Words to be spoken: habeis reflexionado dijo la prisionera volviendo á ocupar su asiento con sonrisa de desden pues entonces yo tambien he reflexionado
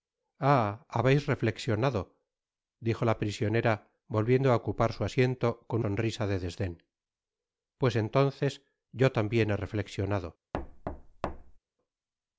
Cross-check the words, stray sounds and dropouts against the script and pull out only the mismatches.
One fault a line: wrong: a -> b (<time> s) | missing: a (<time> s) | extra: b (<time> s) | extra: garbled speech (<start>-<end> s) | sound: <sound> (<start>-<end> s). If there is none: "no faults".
sound: thud (10.5-11.6 s)